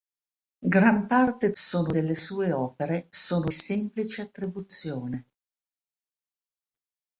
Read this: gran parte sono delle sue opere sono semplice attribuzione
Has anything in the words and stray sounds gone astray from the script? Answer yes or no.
no